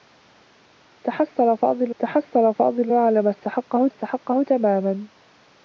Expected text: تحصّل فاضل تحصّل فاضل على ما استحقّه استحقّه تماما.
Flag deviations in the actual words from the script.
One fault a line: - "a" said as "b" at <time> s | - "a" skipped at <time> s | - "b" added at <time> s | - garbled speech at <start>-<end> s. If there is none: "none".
none